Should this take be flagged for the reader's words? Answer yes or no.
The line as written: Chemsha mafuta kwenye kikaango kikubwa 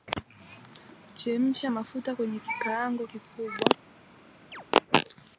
no